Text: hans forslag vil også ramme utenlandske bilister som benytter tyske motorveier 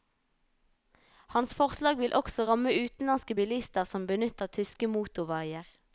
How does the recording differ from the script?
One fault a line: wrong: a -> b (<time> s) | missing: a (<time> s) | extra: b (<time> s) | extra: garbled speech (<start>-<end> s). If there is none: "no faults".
no faults